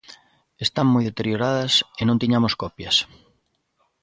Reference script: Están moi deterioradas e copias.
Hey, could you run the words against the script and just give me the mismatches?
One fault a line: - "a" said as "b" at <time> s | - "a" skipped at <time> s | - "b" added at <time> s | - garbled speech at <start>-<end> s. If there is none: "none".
- "non tiñamos" added at 2.0 s